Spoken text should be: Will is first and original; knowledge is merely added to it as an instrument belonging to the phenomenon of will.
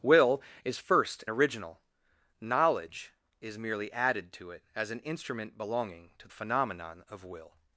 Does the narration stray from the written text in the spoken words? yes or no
yes